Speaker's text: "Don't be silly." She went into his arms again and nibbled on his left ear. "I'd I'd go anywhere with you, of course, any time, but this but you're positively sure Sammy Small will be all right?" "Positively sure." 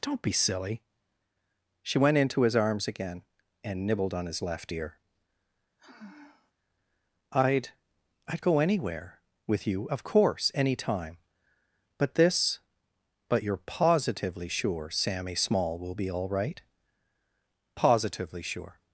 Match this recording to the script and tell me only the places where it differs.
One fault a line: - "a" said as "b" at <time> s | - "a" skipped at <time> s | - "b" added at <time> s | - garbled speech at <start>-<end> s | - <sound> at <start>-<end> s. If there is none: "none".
- sigh at 5.8-6.5 s